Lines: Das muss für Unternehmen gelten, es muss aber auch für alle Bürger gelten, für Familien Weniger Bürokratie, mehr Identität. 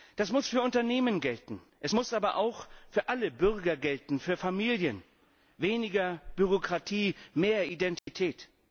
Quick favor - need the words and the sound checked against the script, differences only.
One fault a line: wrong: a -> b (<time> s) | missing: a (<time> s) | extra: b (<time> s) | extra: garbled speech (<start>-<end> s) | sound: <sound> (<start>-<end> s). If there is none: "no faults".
sound: dropout (8.0-8.1 s)